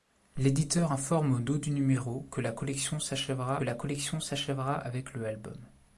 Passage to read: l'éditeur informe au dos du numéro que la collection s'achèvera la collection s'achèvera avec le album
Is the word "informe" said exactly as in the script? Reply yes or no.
yes